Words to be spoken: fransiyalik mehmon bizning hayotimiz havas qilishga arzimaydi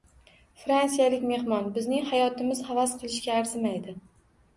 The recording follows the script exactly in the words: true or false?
true